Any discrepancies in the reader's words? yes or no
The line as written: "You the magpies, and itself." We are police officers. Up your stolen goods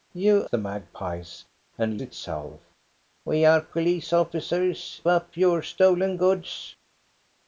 no